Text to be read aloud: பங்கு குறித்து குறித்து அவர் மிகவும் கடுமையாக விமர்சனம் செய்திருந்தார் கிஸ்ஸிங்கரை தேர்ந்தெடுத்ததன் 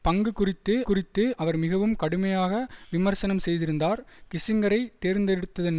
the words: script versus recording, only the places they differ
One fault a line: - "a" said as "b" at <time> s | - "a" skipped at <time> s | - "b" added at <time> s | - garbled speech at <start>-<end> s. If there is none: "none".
none